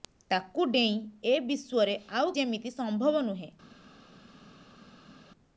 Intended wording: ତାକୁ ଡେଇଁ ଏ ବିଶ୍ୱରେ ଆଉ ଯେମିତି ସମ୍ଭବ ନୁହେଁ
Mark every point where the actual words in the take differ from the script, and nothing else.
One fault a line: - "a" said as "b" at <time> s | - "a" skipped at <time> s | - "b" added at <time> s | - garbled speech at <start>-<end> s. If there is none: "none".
none